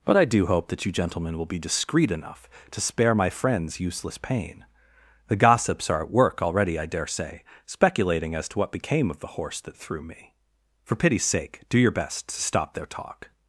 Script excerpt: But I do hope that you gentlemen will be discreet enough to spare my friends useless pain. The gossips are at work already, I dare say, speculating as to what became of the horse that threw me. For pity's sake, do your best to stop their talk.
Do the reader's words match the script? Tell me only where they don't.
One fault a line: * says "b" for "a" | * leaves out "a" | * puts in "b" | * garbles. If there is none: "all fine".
all fine